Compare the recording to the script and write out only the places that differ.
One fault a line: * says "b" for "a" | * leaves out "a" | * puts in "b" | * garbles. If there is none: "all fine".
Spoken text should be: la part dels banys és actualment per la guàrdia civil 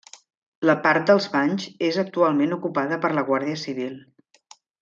* puts in "ocupada"